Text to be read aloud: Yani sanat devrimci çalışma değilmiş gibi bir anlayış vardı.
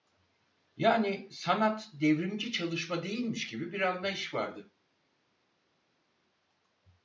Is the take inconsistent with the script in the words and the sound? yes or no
no